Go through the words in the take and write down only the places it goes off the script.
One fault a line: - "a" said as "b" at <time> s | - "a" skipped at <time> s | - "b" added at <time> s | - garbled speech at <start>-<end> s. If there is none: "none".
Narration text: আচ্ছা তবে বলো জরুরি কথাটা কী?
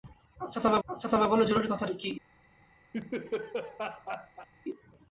- "আচ্ছা তবে" added at 0.9 s